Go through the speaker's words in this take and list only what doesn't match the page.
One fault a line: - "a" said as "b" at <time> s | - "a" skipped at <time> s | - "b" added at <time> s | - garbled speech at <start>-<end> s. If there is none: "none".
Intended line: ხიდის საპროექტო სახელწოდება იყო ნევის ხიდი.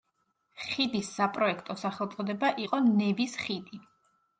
none